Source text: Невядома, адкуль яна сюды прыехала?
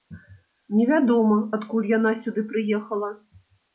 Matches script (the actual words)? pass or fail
pass